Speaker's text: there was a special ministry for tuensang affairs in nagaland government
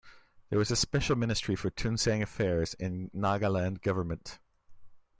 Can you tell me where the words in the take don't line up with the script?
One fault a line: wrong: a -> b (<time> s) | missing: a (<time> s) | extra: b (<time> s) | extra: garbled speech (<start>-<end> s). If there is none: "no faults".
no faults